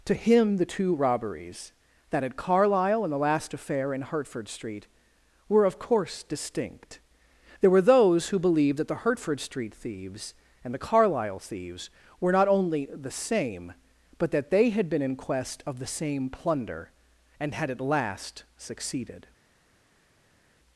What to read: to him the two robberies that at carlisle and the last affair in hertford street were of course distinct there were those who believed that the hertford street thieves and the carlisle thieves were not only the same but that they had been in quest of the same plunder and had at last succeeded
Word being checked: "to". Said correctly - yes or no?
yes